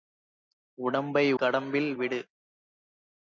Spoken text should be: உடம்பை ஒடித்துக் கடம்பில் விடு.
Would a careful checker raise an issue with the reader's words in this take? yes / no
yes